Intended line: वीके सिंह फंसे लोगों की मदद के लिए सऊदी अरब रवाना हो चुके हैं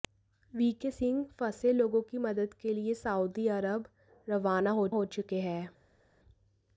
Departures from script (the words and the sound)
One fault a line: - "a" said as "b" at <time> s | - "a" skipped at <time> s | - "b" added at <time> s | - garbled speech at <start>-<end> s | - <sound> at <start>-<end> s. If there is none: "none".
- "हो" added at 4.9 s